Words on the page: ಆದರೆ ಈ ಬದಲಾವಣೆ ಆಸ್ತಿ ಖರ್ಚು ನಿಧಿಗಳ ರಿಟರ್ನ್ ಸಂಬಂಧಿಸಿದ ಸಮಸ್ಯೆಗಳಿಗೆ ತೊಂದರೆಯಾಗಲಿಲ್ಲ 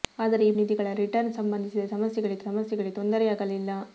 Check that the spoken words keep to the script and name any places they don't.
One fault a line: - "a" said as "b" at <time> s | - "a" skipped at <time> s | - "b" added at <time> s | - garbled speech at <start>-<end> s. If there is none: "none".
- "ಬದಲಾವಣೆ ಆಸ್ತಿ ಖರ್ಚು" skipped at 0.5 s
- "ಸಮಸ್ಯೆಗಳಿಗೆ" added at 2.5 s